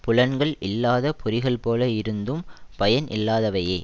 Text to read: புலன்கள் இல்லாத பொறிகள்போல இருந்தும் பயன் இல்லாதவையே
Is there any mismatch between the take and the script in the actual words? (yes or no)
no